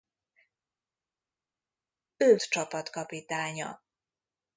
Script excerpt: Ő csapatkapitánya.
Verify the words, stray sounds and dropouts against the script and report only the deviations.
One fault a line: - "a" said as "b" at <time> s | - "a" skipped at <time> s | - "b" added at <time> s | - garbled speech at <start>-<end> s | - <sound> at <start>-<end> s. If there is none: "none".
none